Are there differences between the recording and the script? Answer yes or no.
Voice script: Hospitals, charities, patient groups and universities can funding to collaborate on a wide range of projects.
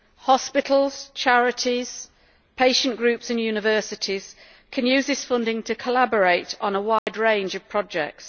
yes